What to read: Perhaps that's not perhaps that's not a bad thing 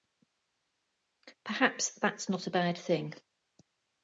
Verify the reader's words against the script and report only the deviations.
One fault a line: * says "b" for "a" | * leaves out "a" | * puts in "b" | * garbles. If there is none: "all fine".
* leaves out "perhaps that's not"